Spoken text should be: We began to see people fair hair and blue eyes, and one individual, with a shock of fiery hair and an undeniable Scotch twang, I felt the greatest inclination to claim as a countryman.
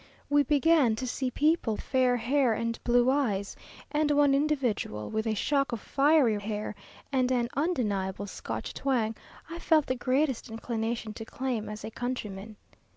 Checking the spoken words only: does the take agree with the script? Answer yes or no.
yes